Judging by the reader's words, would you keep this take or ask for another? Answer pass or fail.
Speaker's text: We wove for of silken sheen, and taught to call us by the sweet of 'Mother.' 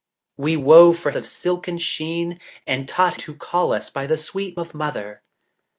pass